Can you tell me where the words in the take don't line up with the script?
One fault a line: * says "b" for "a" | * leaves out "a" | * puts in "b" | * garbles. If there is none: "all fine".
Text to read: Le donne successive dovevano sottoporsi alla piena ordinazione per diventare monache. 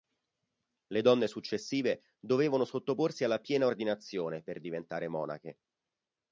all fine